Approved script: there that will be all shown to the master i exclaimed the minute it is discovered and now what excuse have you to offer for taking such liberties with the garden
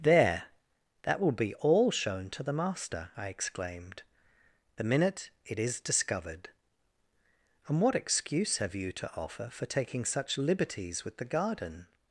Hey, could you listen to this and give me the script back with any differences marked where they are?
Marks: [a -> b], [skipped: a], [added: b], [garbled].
there that will be all shown to the master i exclaimed the minute it is discovered and [skipped: now] what excuse have you to offer for taking such liberties with the garden